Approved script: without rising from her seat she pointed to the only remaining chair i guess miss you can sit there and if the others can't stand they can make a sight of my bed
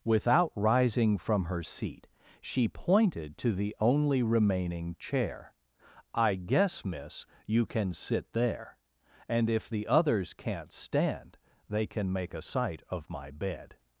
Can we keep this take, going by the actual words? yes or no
yes